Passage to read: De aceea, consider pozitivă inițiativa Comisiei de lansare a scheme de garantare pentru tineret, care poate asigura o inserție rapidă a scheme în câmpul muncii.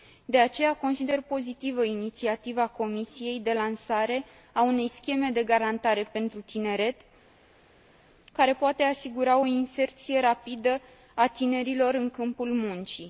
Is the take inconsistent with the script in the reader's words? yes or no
yes